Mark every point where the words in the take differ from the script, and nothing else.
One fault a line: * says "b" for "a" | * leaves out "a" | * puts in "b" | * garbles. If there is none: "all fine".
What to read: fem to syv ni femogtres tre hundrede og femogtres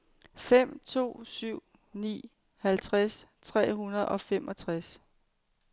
* says "halvtreds" for "femogtres"